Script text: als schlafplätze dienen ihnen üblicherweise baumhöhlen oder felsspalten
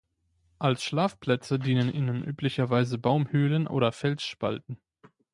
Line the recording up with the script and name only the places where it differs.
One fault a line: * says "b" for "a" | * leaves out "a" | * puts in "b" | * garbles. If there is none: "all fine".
all fine